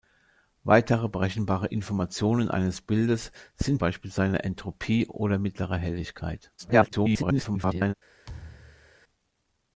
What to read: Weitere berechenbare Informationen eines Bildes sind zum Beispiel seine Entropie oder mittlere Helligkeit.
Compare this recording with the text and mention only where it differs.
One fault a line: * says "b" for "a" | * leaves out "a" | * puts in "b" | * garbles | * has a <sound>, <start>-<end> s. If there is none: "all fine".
* leaves out "zum"
* garbles
* has a thud, 8.3-9.0 s